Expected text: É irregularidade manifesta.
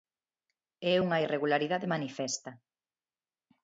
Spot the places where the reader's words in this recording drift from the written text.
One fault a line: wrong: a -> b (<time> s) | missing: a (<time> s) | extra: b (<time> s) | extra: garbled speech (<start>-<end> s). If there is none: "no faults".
extra: unha (1.1 s)